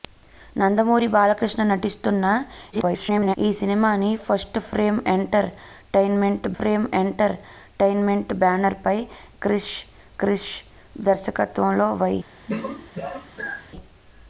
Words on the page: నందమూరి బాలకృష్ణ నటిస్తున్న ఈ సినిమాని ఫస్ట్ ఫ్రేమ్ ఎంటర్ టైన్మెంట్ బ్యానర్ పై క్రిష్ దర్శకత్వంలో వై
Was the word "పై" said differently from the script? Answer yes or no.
no